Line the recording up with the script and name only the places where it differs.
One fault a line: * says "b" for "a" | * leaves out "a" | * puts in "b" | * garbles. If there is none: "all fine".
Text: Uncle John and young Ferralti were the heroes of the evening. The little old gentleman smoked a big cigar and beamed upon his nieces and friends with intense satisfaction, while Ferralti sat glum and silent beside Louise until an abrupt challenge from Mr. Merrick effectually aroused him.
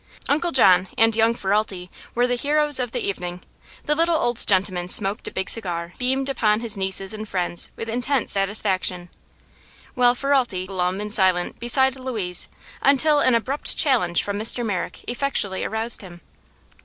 * leaves out "and"
* leaves out "sat"